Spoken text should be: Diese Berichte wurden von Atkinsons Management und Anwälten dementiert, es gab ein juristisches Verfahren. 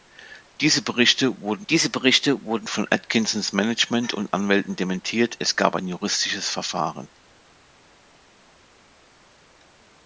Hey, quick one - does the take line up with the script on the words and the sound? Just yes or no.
no